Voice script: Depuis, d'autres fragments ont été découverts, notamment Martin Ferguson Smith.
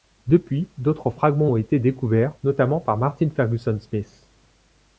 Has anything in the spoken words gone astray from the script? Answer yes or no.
yes